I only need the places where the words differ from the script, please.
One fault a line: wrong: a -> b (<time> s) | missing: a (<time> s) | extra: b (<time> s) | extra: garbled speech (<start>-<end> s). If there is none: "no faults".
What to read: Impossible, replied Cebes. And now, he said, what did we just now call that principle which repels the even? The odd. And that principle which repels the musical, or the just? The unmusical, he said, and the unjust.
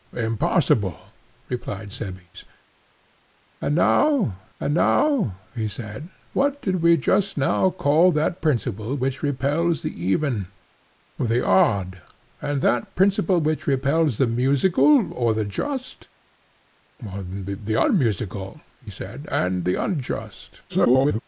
extra: and now (4.6 s)
extra: garbled speech (20.7-21.2 s)